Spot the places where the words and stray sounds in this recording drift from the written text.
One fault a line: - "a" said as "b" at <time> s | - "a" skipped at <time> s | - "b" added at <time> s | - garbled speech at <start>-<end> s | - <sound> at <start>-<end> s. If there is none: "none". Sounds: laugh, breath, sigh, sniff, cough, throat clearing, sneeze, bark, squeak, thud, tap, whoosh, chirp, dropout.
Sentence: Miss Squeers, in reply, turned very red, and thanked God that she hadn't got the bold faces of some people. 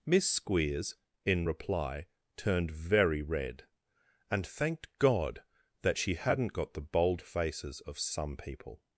none